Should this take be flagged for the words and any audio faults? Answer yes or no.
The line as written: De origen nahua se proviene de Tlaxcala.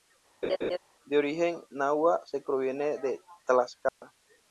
yes